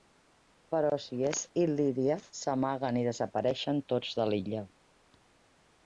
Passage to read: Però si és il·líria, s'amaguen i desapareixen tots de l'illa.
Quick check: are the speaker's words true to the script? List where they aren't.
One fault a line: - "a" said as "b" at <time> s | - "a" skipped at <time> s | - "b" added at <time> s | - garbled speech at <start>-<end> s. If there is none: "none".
none